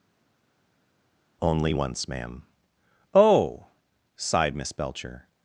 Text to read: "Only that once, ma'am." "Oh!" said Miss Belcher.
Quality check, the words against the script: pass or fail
fail